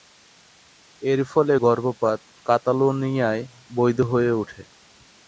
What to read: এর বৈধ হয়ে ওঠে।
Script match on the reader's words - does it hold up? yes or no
no